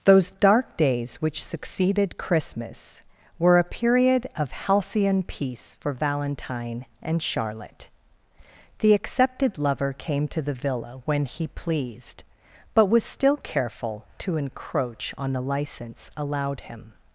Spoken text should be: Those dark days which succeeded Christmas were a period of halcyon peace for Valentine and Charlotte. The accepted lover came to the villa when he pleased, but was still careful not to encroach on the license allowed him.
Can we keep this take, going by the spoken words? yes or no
no